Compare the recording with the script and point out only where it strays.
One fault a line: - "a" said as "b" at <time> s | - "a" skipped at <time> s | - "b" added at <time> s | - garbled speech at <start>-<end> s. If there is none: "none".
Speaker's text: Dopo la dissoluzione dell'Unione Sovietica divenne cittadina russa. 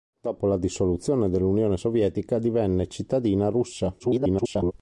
- garbled speech at 4.0-4.7 s